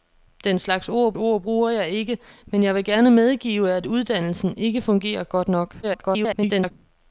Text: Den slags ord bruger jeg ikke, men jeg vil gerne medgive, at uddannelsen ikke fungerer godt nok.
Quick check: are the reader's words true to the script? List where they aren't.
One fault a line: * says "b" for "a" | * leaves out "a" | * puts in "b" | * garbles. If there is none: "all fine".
* puts in "ord"
* garbles